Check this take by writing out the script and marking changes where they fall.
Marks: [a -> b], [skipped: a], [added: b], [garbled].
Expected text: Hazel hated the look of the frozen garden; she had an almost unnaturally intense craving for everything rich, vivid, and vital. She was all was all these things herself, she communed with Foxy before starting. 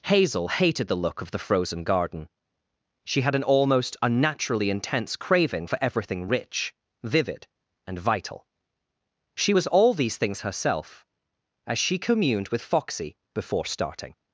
Hazel hated the look of the frozen garden; she had an almost unnaturally intense craving for everything rich, vivid, and vital. She was all [skipped: was all] these things herself, [added: as] she communed with Foxy before starting.